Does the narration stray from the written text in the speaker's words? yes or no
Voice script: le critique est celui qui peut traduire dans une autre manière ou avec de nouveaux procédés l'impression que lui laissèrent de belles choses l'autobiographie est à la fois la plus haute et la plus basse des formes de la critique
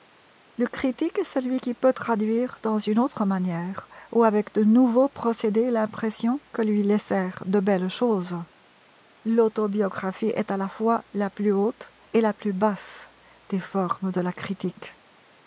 no